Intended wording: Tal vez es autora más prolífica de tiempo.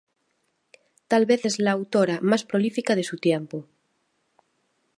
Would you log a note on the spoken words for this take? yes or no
yes